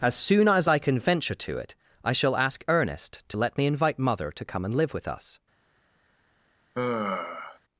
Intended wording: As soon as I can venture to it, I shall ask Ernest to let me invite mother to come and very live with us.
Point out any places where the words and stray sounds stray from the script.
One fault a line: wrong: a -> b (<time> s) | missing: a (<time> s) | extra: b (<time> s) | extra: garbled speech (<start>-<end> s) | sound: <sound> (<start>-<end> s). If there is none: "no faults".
missing: very (4.7 s)
sound: sigh (6.7-7.6 s)